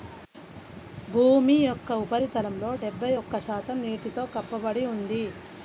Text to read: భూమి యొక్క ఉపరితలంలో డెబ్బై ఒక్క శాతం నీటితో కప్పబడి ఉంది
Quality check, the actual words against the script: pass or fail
pass